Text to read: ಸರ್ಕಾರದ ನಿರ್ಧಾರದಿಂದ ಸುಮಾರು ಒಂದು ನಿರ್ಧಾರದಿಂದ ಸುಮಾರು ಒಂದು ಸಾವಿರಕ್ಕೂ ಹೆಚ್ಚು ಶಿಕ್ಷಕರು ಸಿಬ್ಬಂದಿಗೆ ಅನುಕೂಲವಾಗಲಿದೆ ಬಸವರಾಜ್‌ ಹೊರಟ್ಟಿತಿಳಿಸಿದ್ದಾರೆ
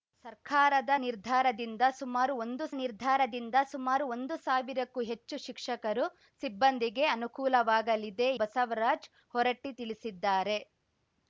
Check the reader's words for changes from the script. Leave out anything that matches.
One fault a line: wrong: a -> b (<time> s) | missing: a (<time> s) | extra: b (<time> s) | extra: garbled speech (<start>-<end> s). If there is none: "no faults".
no faults